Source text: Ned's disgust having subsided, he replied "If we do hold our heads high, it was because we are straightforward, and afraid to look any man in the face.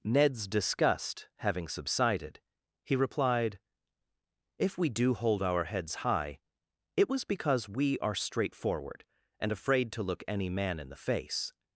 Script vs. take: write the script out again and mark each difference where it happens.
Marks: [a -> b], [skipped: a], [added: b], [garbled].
Ned's disgust having subsided, he replied "If we do hold our heads high, it was because we are straightforward, and afraid to look any man in the face.